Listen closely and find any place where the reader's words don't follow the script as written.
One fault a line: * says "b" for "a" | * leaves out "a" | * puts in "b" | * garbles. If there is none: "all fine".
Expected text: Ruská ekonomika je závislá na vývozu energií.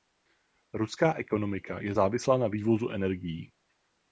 all fine